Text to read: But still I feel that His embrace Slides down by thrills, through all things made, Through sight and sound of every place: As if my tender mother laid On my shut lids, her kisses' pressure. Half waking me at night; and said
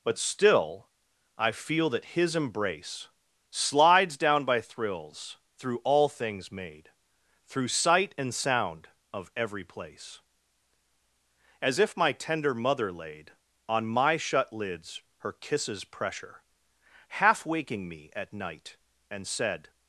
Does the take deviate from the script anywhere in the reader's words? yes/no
no